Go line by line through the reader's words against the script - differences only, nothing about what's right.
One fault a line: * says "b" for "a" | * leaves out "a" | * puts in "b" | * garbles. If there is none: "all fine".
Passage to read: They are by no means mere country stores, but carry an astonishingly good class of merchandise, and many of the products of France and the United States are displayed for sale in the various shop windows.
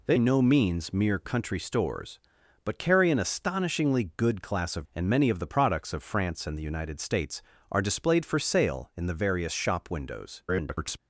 * leaves out "are by"
* leaves out "merchandise"
* garbles